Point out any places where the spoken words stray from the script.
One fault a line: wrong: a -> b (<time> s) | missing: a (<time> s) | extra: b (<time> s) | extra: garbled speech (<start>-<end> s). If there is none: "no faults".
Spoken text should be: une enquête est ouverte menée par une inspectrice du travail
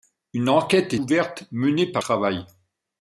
missing: est (0.9 s)
missing: une inspectrice du (2.0 s)